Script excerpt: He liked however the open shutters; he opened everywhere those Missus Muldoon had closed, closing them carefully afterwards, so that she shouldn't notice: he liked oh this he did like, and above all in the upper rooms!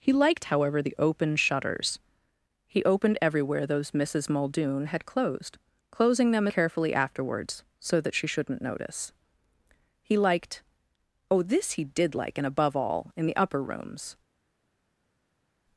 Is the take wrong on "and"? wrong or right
right